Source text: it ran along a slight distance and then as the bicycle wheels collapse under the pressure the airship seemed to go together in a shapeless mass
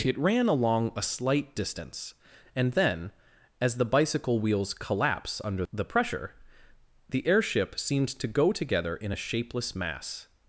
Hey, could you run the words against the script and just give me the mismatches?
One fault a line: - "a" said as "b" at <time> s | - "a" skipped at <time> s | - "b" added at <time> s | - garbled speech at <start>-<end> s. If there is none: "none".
none